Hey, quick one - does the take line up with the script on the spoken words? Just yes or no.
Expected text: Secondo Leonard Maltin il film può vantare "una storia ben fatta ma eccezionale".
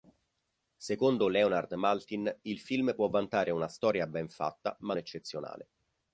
yes